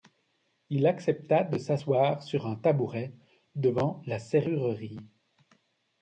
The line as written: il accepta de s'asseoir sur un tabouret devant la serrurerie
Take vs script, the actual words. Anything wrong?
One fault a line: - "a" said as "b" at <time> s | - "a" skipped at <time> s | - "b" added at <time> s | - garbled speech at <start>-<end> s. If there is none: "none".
none